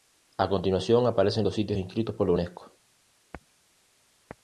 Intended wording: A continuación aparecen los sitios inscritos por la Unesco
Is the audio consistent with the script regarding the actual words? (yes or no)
yes